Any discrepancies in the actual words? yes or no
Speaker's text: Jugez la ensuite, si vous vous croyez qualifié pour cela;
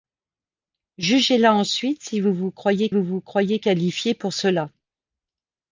yes